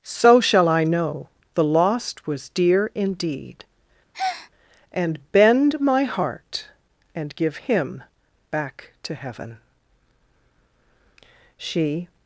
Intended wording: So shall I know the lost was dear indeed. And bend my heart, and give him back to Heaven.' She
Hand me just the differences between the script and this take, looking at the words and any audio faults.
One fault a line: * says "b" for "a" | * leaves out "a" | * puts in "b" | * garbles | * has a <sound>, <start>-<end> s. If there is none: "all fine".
* has a breath, 4.1-4.5 s